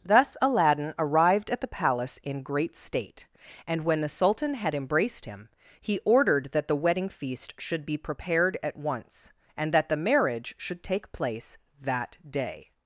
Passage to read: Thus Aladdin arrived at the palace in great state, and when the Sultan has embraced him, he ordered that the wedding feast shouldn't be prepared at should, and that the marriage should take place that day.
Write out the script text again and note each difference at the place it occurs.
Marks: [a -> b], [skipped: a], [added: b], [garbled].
Thus Aladdin arrived at the palace in great state, and when the Sultan [has -> had] embraced him, he ordered that the wedding feast [shouldn't -> should] be prepared at [should, -> once] and that the marriage should take place that day.